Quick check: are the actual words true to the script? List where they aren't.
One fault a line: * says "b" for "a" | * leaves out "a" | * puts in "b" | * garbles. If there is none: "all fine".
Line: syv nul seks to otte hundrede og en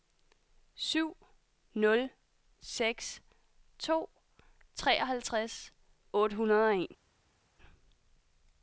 * puts in "treoghalvtreds"